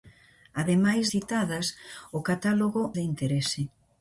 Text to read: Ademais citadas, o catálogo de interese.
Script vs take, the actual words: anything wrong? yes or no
no